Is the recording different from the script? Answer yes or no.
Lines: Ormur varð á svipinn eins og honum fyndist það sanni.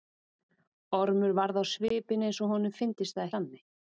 no